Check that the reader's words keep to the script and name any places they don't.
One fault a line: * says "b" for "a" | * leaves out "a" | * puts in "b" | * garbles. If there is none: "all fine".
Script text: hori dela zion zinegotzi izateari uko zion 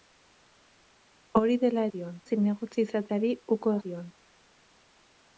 all fine